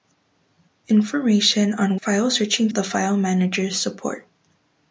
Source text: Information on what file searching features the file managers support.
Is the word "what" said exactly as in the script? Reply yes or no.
no